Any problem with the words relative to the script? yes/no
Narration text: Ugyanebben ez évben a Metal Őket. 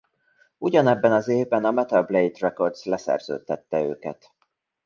yes